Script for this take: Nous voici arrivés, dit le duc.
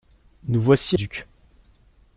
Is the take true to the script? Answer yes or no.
no